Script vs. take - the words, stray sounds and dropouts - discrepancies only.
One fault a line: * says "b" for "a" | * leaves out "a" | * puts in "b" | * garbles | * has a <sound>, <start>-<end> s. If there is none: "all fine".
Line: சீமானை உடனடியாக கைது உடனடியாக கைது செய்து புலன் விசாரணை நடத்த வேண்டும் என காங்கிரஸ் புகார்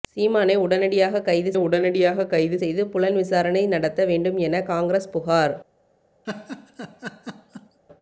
* has a laugh, 6.2-7.8 s